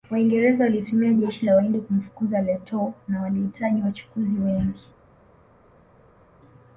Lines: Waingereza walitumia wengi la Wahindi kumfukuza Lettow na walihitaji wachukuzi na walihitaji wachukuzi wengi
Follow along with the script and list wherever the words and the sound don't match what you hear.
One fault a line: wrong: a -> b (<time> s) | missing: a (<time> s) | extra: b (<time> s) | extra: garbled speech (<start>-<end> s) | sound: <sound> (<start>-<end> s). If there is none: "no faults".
wrong: wengi -> jeshi (1.1 s)
missing: na walihitaji wachukuzi (4.4 s)